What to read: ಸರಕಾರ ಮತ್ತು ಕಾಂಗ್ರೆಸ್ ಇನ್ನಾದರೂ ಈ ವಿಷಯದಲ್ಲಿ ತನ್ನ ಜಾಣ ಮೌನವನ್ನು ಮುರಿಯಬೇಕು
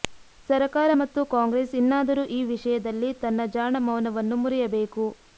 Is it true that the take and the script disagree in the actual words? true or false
false